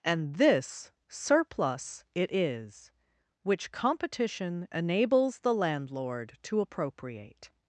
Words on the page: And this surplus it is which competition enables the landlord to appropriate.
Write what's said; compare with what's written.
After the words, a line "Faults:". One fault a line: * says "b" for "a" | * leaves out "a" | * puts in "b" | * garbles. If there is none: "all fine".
And this surplus it is which competition enables the landlord to appropriate.
Faults:
all fine